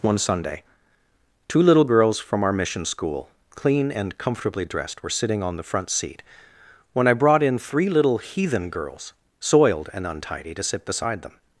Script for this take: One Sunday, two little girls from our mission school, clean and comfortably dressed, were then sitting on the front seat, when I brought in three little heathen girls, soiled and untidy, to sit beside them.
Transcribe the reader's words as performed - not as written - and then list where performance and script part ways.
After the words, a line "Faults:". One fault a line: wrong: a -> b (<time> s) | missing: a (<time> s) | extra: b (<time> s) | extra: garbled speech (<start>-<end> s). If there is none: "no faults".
One Sunday, two little girls from our mission school, clean and comfortably dressed, were sitting on the front seat, when I brought in three little heathen girls, soiled and untidy, to sit beside them.
Faults:
missing: then (5.1 s)